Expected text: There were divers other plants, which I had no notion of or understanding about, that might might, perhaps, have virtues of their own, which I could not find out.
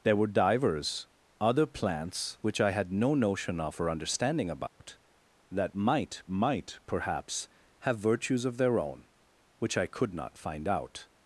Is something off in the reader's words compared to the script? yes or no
no